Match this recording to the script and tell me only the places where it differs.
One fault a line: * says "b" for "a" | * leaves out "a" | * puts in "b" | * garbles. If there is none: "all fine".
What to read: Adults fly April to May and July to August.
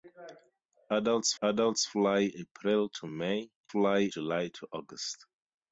* puts in "adults"
* says "fly" for "and"